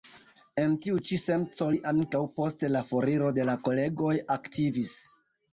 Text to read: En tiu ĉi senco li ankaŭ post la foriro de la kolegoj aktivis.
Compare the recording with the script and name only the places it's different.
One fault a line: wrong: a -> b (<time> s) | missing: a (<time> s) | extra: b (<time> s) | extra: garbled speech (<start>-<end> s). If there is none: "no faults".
no faults